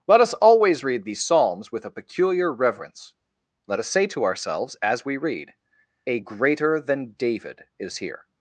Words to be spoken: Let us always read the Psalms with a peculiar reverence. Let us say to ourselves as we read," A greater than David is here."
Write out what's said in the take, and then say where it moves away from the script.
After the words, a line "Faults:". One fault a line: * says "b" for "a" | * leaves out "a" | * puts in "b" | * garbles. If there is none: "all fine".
Let us always read these Psalms with a peculiar reverence. Let us say to ourselves as we read," A greater than David is here."
Faults:
* says "these" for "the"